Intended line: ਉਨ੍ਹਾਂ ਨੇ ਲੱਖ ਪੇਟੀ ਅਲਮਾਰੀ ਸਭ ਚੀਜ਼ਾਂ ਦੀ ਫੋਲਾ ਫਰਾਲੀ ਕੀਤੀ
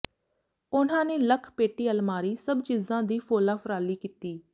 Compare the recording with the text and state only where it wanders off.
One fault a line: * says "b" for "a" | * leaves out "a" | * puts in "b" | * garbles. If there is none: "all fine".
all fine